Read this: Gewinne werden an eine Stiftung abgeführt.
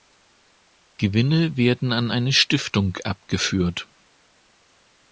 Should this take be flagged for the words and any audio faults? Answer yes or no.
no